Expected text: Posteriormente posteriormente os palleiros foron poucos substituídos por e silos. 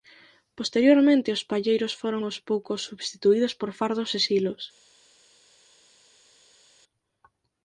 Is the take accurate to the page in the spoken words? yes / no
no